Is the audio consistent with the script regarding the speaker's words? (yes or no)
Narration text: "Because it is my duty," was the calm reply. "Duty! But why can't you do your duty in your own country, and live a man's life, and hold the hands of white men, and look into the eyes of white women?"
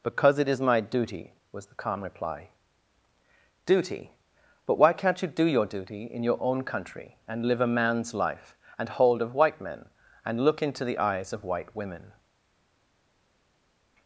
no